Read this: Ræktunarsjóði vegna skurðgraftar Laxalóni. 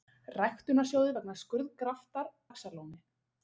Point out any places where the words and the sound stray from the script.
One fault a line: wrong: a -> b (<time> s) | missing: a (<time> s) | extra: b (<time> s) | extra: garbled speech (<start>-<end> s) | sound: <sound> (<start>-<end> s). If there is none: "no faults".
no faults